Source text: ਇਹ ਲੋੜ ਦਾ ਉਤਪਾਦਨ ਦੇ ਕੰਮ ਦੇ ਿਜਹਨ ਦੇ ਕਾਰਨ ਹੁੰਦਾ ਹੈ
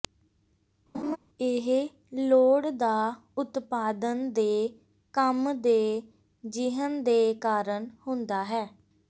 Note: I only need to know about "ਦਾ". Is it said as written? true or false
true